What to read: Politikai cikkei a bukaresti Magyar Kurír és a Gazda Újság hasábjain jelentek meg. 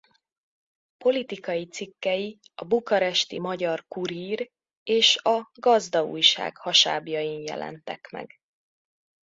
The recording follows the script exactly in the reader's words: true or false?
true